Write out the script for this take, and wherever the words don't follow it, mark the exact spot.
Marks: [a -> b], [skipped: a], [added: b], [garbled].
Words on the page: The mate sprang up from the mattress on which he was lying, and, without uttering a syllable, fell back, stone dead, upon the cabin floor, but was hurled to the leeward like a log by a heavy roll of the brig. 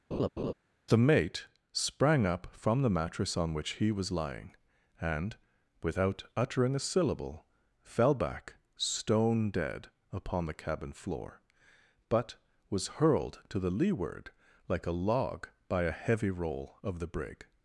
The mate sprang up from the mattress on which he was lying, and, without uttering a syllable, fell back, stone dead, upon the cabin floor, but was hurled to the leeward like a log by a heavy roll of the brig.